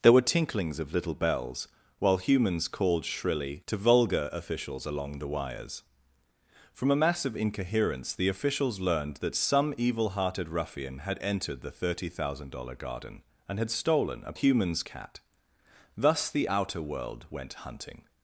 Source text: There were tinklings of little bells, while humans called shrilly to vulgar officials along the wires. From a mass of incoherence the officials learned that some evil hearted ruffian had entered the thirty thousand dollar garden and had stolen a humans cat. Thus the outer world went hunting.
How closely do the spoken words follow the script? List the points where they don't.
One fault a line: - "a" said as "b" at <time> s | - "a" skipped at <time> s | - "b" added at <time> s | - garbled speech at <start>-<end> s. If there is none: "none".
none